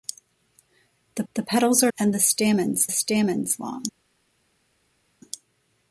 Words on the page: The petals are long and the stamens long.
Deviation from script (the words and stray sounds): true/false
true